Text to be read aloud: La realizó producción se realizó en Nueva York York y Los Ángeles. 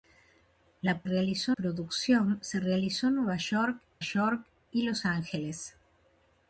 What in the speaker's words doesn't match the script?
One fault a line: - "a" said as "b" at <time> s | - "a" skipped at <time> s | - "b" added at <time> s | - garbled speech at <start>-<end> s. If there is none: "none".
none